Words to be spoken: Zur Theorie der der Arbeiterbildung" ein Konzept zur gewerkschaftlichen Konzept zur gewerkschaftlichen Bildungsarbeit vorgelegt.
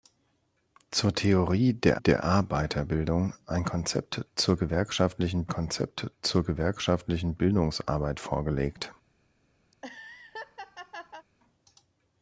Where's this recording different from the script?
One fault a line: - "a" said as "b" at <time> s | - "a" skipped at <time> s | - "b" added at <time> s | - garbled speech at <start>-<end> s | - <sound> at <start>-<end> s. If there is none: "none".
- laugh at 9.7-11.3 s